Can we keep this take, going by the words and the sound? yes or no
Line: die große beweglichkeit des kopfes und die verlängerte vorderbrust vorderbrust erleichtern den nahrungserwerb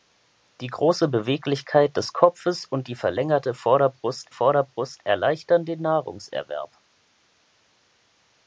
yes